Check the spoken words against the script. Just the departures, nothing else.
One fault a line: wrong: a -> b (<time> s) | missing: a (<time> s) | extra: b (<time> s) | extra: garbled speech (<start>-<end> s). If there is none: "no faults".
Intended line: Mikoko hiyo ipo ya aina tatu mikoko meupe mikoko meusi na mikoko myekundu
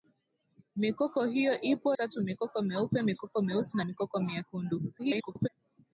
missing: ya aina (2.0 s)
extra: garbled speech (5.0-5.5 s)